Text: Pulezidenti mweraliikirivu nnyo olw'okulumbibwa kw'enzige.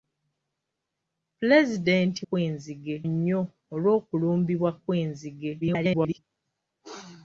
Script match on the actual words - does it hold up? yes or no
no